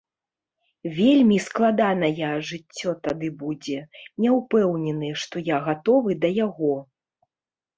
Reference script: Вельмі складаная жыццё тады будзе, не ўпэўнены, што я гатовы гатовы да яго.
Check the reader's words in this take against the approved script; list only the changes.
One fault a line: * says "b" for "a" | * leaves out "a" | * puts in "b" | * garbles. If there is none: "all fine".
* leaves out "гатовы"